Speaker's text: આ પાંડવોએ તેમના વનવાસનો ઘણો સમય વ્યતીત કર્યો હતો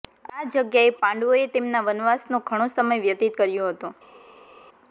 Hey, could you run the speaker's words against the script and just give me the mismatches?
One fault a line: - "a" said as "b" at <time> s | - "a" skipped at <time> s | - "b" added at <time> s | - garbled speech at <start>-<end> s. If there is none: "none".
- "જગ્યાએ" added at 0.5 s